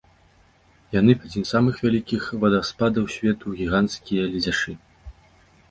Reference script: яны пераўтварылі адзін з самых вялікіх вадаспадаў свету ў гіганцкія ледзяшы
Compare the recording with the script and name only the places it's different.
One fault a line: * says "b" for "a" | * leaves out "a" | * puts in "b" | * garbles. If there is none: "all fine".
* leaves out "пераўтварылі"